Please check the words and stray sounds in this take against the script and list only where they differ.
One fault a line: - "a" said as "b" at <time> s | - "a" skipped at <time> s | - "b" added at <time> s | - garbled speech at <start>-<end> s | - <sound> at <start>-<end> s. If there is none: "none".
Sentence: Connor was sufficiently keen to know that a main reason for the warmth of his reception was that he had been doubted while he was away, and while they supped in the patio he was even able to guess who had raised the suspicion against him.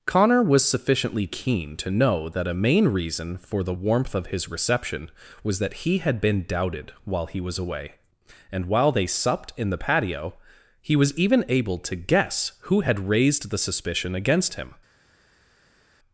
none